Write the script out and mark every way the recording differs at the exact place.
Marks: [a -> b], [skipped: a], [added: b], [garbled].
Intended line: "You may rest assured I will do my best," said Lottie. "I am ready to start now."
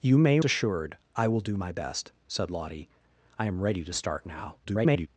"You may [skipped: rest] assured I will do my best," said Lottie. "I am ready to start now." [garbled]